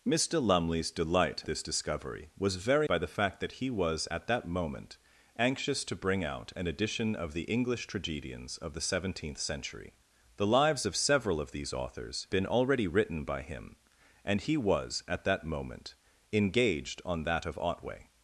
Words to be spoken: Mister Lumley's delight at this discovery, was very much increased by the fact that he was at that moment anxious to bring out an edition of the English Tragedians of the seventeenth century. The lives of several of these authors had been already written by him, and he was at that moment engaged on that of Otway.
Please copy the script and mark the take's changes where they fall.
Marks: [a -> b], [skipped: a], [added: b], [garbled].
Mister Lumley's delight [skipped: at] this discovery, was very [skipped: much increased] by the fact that he was at that moment anxious to bring out an edition of the English Tragedians of the seventeenth century. The lives of several of these authors [skipped: had] been already written by him, and he was at that moment engaged on that of Otway.